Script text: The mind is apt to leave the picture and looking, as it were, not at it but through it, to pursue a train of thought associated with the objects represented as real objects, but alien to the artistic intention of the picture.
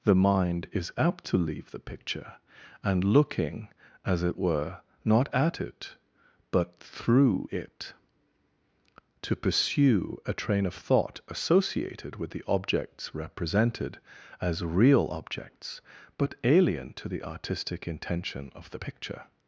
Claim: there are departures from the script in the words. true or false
false